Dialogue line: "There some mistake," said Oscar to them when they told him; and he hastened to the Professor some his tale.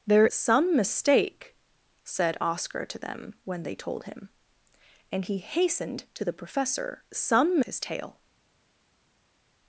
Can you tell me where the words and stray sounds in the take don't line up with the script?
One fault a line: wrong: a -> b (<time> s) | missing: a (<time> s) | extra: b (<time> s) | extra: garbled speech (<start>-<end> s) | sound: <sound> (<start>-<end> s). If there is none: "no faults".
no faults